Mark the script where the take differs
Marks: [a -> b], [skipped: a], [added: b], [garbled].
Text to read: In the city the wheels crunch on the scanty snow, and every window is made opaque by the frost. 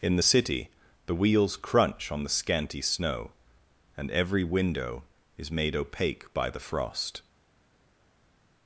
In the city the wheels crunch on the scanty snow, and every window is made opaque by the frost.